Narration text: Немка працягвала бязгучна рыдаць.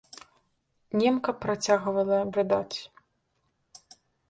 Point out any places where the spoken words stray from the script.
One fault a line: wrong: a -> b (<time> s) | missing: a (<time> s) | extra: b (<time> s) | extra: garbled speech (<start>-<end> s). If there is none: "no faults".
missing: бязгучна (2.2 s)